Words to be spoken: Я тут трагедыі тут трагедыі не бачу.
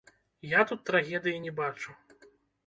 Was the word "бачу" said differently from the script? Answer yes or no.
no